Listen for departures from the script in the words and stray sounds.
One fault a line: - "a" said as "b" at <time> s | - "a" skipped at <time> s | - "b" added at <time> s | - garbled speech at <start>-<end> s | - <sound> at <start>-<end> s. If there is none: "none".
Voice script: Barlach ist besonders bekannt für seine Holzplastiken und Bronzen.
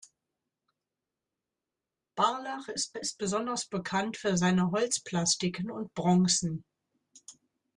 - "ist" added at 2.9 s